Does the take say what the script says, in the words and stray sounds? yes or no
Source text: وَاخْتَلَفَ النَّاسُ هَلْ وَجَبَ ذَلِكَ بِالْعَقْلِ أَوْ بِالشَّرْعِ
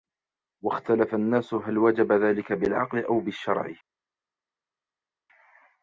yes